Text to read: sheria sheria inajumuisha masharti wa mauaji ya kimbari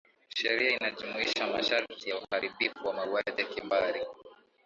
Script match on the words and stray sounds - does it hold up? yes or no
no